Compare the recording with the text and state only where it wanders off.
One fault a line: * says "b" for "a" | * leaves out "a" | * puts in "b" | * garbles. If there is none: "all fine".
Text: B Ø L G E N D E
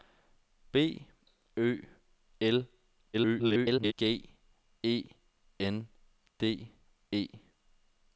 * garbles